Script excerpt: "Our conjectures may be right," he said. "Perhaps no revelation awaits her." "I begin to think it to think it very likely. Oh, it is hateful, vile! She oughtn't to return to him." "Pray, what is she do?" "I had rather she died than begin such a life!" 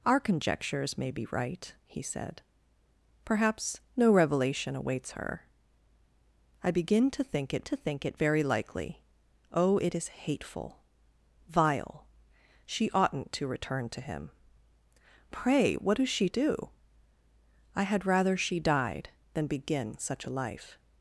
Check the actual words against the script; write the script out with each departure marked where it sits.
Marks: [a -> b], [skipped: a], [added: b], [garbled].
"Our conjectures may be right," he said. "Perhaps no revelation awaits her." "I begin to think it to think it very likely. Oh, it is hateful, vile! She oughtn't to return to him." "Pray, what is she do?" "I had rather she died than begin such a life!"